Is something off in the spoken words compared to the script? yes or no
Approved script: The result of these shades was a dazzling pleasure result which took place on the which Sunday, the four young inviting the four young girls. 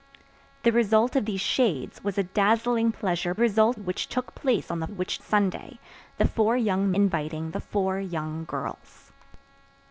no